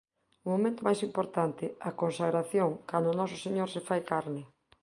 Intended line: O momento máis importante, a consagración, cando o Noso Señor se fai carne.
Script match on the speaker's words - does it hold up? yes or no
yes